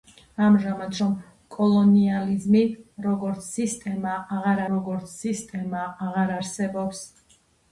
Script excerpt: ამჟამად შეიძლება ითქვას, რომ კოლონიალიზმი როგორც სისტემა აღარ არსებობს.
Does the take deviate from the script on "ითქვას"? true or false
true